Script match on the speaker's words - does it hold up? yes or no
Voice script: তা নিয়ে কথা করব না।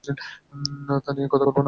yes